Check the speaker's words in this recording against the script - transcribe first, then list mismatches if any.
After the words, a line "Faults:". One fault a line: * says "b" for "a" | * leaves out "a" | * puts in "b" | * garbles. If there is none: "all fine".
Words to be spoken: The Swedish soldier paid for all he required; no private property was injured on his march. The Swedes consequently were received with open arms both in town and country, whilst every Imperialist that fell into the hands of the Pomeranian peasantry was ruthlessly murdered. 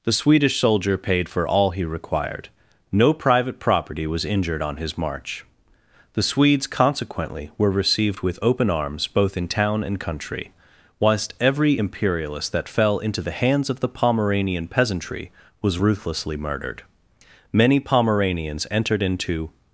The Swedish soldier paid for all he required; no private property was injured on his march. The Swedes consequently were received with open arms both in town and country, whilst every Imperialist that fell into the hands of the Pomeranian peasantry was ruthlessly murdered. Many Pomeranians entered into
Faults:
* puts in "Many Pomeranians entered into"